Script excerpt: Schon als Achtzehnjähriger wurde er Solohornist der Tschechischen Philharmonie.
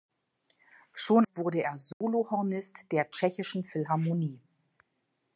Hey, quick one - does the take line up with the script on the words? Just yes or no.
no